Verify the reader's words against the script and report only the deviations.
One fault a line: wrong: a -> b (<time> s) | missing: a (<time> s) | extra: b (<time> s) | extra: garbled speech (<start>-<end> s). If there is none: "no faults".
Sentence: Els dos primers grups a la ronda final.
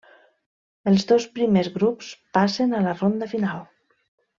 extra: passen (2.4 s)